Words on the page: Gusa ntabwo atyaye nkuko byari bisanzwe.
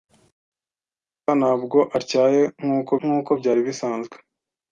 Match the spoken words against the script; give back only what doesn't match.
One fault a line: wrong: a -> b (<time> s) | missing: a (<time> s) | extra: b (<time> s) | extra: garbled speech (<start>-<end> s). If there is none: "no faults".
extra: nkuko (3.0 s)